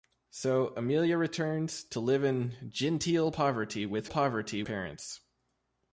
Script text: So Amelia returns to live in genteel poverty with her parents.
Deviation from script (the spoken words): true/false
true